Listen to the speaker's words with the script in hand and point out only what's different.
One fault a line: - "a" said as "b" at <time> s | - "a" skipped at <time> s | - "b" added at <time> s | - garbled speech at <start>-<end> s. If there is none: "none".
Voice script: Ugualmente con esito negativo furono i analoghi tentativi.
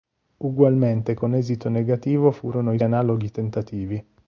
none